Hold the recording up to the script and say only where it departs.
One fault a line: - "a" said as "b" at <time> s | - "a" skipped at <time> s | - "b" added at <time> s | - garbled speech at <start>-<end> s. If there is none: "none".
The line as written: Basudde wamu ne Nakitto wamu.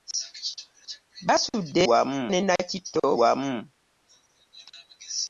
none